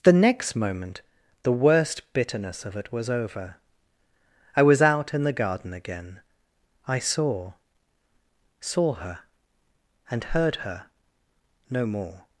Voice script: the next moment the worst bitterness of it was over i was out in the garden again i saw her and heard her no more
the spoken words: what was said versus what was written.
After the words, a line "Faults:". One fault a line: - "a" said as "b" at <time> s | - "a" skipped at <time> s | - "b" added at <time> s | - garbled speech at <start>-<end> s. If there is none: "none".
the next moment the worst bitterness of it was over i was out in the garden again i saw saw her and heard her no more
Faults:
- "saw" added at 8.6 s